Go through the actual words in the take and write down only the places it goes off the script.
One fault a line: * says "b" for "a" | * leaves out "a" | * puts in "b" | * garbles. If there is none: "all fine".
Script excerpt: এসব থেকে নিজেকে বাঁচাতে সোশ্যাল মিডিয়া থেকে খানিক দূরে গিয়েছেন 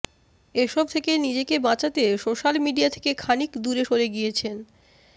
* puts in "সরে"